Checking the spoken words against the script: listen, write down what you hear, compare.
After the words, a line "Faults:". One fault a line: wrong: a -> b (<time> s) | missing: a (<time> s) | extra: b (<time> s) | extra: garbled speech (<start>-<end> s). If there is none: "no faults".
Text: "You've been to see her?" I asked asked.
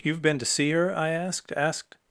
"You've been to see her?" I asked asked.
Faults:
no faults